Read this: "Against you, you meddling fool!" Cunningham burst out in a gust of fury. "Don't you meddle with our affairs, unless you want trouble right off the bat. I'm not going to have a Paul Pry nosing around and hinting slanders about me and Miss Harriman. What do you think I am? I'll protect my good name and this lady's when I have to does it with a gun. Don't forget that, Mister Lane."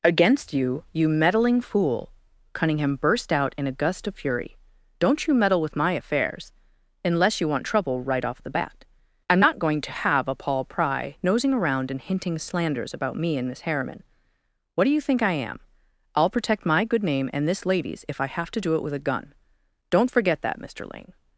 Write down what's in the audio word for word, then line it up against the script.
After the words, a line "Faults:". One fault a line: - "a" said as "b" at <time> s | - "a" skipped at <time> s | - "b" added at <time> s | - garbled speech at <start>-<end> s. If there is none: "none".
"Against you, you meddling fool!" Cunningham burst out in a gust of fury. "Don't you meddle with my affairs, unless you want trouble right off the bat. I'm not going to have a Paul Pry nosing around and hinting slanders about me and Miss Harriman. What do you think I am? I'll protect my good name and this lady's if I have to do it with a gun. Don't forget that, Mister Lane."
Faults:
- "our" said as "my" at 5.8 s
- "when" said as "if" at 18.1 s
- "does" said as "do" at 18.6 s